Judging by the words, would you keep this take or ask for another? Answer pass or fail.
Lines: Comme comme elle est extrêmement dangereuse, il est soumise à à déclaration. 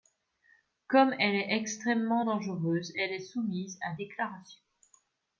fail